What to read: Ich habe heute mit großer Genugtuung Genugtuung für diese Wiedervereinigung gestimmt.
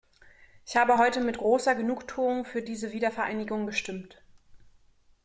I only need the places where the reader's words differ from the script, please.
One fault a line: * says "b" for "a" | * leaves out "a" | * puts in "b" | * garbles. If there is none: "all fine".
* leaves out "Genugtuung"